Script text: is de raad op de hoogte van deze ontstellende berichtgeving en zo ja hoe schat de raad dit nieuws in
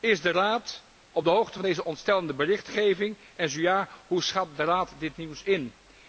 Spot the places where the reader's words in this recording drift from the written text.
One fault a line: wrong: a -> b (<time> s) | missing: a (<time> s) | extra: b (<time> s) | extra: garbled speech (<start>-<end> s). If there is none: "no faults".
no faults